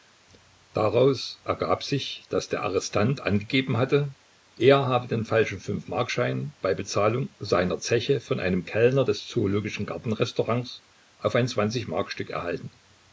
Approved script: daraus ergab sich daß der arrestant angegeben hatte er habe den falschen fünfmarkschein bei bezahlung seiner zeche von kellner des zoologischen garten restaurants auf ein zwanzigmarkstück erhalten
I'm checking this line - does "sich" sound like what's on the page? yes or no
yes